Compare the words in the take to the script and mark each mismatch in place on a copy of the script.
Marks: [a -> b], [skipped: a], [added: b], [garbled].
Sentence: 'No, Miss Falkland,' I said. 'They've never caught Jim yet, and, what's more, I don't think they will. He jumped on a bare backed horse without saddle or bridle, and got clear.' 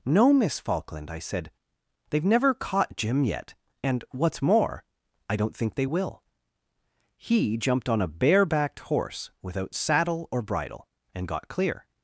'No, Miss Falkland,' I said. 'They've never caught Jim yet, and, what's more, I don't think they will. He jumped on a bare backed horse without saddle or bridle, and got clear.'